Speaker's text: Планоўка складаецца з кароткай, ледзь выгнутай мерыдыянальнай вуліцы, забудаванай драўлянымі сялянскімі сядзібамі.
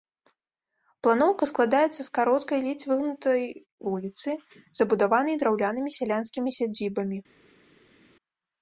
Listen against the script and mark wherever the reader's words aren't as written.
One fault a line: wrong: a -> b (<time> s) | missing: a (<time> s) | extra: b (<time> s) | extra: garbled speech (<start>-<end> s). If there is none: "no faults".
missing: мерыдыянальнай (3.4 s)